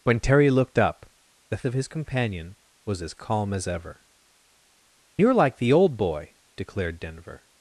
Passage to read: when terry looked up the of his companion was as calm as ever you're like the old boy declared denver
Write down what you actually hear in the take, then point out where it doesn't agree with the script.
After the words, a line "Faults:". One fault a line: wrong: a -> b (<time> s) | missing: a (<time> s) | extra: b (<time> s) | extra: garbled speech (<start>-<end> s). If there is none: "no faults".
when terry looked up the of his companion was as calm as ever you're like the old boy declared denver
Faults:
no faults